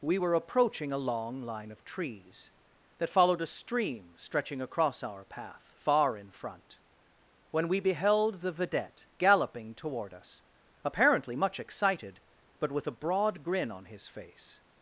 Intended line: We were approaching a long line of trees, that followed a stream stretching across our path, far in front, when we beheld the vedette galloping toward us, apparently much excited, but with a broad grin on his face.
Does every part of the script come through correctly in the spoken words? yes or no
yes